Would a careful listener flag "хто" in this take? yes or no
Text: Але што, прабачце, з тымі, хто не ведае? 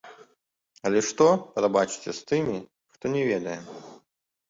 no